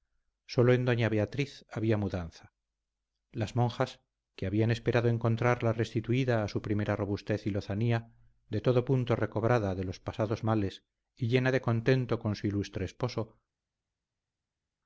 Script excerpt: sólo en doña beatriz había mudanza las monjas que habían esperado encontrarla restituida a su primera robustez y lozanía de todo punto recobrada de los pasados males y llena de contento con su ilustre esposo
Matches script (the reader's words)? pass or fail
pass